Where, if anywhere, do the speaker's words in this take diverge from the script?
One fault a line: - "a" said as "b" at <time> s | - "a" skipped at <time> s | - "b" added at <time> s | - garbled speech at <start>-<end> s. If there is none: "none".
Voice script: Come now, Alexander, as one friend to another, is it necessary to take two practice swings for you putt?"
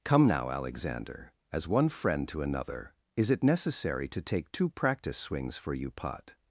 none